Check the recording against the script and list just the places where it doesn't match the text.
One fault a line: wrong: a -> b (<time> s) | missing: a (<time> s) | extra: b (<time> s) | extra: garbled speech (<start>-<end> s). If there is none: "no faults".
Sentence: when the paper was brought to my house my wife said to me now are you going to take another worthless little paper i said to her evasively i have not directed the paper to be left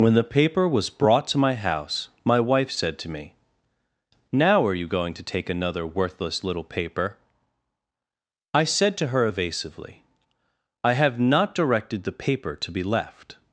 no faults